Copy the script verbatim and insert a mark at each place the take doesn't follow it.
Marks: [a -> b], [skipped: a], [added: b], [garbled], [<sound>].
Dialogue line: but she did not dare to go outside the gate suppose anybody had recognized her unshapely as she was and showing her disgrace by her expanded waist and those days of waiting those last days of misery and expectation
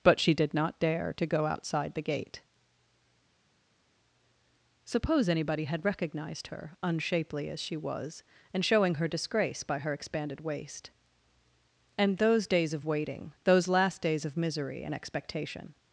but she did not dare to go outside the gate suppose anybody had recognized her unshapely as she was and showing her disgrace by her expanded waist and those days of waiting those last days of misery and expectation